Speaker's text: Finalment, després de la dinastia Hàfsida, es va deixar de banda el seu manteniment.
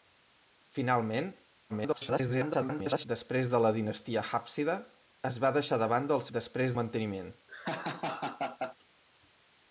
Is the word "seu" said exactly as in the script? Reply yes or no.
no